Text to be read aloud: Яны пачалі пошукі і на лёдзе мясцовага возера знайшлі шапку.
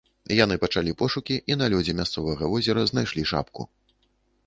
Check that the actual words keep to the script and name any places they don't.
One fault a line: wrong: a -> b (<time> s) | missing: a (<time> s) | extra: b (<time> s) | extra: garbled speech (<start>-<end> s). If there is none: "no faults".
no faults